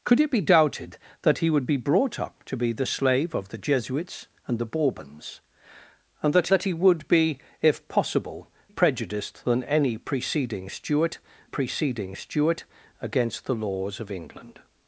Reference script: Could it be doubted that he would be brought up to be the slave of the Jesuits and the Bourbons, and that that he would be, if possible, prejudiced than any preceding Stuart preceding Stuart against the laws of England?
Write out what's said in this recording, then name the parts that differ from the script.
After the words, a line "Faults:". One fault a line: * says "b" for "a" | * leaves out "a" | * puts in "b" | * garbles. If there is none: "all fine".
Could it be doubted that he would be brought up to be the slave of the Jesuits and the Bourbons, and that that he would be, if possible, prejudiced than any preceding Stuart preceding Stuart against the laws of England?
Faults:
all fine